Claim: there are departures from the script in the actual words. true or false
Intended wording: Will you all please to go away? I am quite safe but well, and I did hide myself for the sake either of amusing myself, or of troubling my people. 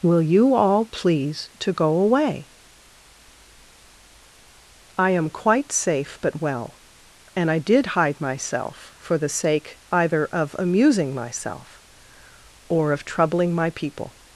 false